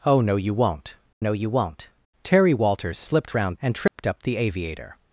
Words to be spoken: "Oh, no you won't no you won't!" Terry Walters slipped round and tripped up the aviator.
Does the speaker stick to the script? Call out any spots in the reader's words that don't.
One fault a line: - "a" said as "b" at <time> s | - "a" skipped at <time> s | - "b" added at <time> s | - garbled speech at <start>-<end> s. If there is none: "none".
none